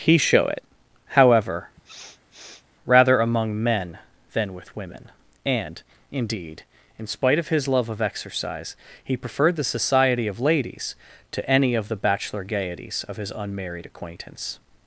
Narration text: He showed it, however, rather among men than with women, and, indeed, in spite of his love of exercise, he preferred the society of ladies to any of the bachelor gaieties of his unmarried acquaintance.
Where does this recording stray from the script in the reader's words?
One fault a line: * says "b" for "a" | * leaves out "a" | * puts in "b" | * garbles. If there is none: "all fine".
* says "show" for "showed"